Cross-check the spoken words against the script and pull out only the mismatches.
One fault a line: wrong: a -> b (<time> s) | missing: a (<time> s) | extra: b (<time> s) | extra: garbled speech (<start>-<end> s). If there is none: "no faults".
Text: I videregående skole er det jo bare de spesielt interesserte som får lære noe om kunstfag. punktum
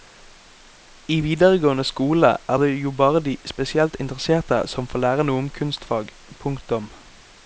no faults